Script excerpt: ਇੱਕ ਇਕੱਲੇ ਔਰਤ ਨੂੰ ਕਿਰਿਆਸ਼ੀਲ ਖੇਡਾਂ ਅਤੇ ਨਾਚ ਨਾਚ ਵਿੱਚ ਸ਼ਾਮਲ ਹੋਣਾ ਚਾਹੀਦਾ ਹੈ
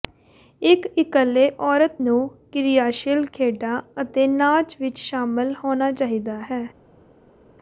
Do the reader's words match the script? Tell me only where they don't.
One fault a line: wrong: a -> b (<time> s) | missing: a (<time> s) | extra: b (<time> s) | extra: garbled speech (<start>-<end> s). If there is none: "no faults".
missing: ਨਾਚ (4.8 s)